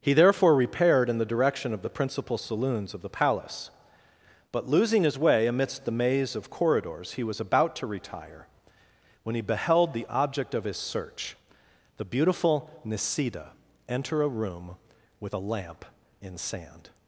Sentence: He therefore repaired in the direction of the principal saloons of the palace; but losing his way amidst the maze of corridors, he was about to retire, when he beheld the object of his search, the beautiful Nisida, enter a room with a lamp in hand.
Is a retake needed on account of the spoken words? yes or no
yes